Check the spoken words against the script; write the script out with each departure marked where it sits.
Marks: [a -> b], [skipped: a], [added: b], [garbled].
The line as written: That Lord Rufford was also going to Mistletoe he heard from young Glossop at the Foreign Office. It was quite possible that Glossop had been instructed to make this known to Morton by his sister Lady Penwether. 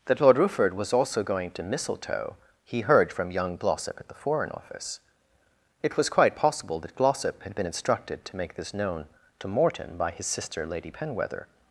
That Lord Rufford was also going to Mistletoe he heard from young Glossop at the Foreign Office. It was quite possible that Glossop had been instructed to make this known to Morton by his sister Lady Penwether.